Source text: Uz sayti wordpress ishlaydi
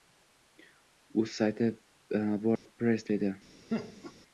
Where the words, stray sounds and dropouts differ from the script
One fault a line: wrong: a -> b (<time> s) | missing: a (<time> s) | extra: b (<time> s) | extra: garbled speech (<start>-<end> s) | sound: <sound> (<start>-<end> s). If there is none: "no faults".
sound: dropout (2.6-2.7 s)
sound: laugh (3.7-4.1 s)